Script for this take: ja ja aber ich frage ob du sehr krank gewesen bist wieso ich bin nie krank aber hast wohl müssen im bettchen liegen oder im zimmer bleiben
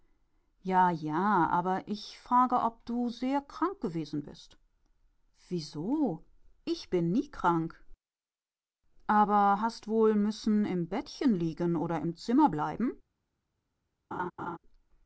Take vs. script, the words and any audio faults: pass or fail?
fail